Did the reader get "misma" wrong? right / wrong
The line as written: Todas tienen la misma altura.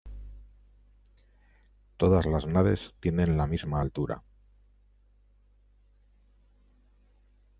right